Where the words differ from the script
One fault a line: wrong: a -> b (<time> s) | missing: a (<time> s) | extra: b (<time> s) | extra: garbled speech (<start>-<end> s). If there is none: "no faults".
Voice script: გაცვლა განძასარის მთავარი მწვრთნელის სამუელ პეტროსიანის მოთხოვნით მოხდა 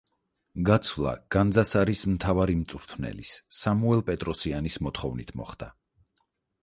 no faults